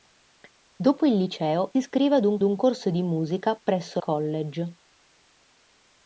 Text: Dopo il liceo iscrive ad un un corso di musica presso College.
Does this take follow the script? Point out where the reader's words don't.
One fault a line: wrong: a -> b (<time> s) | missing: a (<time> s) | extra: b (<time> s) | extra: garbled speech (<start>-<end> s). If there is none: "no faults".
no faults